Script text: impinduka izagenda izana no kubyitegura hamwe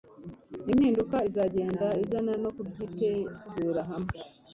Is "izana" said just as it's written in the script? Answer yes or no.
yes